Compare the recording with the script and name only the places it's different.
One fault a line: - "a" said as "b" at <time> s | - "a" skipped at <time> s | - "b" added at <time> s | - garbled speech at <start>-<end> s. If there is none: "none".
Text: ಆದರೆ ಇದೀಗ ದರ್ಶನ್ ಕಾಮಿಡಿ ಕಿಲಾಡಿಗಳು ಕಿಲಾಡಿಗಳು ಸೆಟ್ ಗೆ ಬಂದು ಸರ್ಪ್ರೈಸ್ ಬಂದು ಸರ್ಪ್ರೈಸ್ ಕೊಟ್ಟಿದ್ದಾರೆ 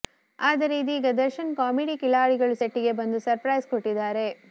- "ಕಿಲಾಡಿಗಳು" skipped at 2.5 s
- "ಬಂದು ಸರ್ಪ್ರೈಸ್" skipped at 3.7 s